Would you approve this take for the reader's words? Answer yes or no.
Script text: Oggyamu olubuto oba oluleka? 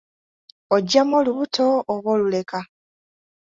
yes